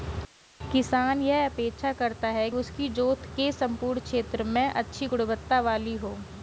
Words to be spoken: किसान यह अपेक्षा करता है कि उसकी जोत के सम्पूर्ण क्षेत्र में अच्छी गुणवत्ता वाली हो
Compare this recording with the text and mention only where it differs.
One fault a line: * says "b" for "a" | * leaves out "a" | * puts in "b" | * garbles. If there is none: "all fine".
* leaves out "कि"